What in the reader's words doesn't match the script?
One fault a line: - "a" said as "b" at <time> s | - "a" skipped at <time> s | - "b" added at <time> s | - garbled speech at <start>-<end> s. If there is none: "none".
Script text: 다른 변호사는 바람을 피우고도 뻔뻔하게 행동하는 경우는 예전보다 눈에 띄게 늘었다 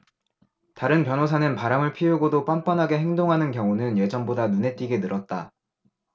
none